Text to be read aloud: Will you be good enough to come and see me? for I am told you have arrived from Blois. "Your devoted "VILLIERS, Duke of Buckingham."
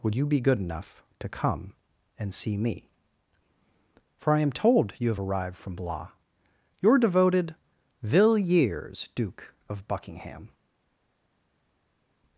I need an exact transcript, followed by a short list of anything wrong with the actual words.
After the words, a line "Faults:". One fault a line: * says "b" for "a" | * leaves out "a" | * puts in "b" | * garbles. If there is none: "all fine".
Would you be good enough to come and see me? for I am told you have arrived from Blois. "Your devoted "VILLIERS, Duke of Buckingham."
Faults:
* says "Would" for "Will"